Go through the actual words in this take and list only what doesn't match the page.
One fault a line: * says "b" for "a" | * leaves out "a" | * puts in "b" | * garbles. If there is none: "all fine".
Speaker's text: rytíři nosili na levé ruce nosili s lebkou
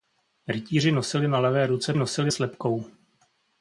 all fine